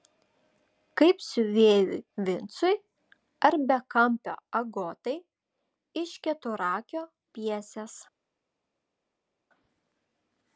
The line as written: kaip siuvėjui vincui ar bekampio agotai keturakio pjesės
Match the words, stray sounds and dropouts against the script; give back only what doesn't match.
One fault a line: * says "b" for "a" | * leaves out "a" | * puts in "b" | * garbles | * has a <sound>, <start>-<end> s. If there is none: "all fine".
* puts in "iš"